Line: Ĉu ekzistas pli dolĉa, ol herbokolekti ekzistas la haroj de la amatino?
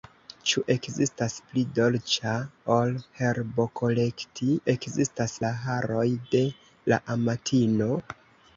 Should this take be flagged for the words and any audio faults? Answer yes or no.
no